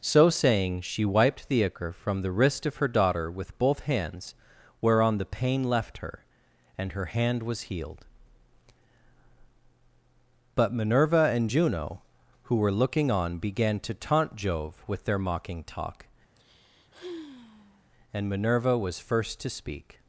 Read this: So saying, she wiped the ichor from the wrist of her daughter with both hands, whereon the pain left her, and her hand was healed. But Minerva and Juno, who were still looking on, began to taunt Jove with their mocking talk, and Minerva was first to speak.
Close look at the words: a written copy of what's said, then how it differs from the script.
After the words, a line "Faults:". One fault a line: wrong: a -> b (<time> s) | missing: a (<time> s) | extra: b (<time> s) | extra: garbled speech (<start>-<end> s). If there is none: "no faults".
So saying, she wiped the ichor from the wrist of her daughter with both hands, whereon the pain left her, and her hand was healed. But Minerva and Juno, who were looking on, began to taunt Jove with their mocking talk, and Minerva was first to speak.
Faults:
missing: still (12.7 s)